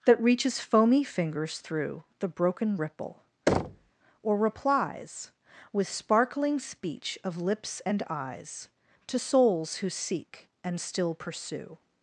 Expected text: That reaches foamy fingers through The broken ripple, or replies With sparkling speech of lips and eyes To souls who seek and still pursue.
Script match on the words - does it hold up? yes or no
yes